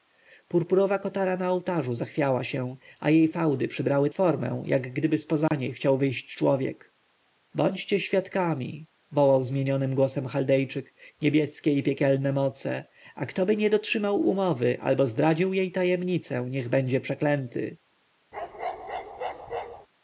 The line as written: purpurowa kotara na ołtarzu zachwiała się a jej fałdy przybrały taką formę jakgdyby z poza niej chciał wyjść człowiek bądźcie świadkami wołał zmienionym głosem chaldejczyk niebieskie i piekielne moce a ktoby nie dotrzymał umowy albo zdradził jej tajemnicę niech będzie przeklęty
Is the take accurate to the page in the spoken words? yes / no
no